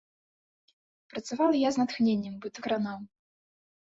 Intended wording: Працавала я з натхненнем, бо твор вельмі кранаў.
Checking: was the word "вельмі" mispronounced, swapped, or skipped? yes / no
yes